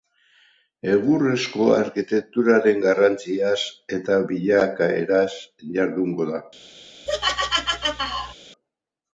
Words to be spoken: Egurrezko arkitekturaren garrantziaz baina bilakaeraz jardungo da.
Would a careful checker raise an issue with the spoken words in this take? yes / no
yes